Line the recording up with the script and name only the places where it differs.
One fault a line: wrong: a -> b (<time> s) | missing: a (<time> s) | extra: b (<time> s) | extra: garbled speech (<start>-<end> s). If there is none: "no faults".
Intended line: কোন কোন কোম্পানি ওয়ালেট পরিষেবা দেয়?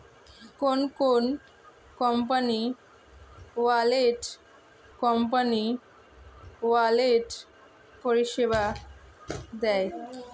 extra: কোম্পানি ওয়ালেট (5.0 s)